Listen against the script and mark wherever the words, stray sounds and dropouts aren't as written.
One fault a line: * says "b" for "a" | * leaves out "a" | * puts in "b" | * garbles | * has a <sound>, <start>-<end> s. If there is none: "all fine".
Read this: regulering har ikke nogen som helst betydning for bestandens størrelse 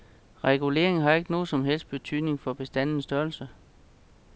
all fine